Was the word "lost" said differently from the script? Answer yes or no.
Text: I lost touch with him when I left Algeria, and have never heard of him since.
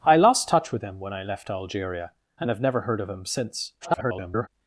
no